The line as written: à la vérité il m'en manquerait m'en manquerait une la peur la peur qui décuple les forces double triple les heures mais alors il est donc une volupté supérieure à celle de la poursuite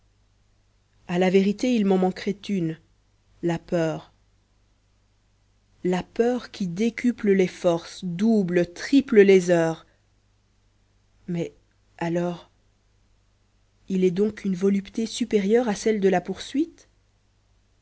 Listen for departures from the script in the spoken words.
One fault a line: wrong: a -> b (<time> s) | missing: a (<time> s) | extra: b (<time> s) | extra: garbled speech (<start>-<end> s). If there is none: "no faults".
missing: m'en manquerait (2.3 s)